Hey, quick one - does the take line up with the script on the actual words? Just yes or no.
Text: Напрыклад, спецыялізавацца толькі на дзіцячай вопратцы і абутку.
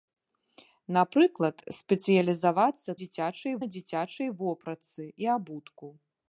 no